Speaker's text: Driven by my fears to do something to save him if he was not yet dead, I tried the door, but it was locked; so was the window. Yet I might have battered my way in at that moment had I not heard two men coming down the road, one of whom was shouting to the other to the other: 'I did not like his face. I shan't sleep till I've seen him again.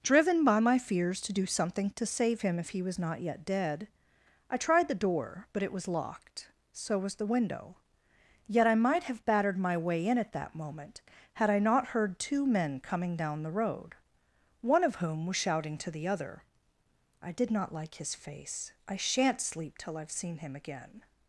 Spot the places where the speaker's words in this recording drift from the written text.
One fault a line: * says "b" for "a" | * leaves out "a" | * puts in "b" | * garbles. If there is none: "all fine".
* leaves out "to the other"